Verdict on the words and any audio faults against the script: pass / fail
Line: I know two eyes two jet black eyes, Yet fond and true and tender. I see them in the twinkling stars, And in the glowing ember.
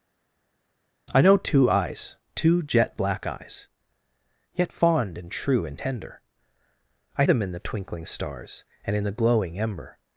fail